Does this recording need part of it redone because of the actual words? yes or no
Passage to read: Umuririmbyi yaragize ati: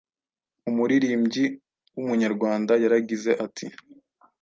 yes